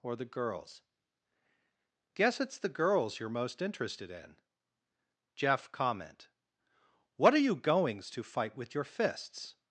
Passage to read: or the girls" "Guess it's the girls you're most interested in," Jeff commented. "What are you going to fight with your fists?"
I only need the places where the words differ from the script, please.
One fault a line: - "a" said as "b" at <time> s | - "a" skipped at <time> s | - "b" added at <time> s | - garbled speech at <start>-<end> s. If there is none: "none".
- "commented" said as "comment" at 5.7 s
- "going" said as "goings" at 7.5 s